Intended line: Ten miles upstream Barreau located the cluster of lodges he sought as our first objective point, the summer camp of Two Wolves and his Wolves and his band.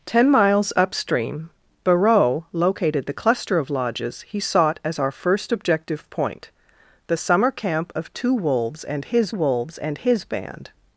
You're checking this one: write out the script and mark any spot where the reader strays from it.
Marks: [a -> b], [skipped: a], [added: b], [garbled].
Ten miles upstream Barreau located the cluster of lodges he sought as our first objective point, the summer camp of Two Wolves and his Wolves and his band.